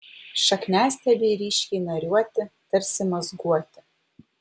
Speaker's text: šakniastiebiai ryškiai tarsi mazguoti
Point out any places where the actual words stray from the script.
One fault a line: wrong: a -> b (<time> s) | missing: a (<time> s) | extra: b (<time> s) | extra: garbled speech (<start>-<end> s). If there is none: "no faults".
extra: nariuoti (1.8 s)